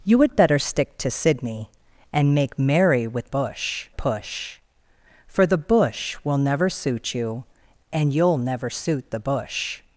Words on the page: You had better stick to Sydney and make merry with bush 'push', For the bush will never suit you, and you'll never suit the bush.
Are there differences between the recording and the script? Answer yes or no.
no